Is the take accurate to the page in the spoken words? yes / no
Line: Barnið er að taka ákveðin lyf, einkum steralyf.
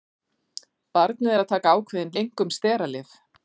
no